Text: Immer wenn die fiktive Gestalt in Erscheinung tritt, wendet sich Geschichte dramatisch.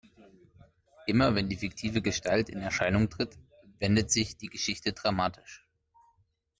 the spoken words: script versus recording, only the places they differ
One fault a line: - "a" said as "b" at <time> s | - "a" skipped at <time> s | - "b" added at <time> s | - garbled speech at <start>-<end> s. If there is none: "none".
- "die" added at 4.3 s